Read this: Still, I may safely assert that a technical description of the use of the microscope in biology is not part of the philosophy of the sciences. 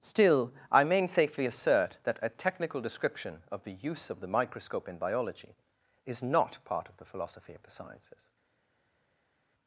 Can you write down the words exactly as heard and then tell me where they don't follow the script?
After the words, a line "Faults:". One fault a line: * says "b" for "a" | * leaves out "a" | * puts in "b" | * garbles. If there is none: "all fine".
Still, I may safely assert that a technical description of the use of the microscope in biology is not part of the philosophy of the sciences.
Faults:
all fine